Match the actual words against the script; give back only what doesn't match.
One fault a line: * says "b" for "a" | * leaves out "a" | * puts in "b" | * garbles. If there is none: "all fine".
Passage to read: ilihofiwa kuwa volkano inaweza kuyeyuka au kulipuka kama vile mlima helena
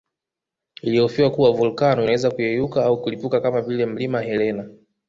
all fine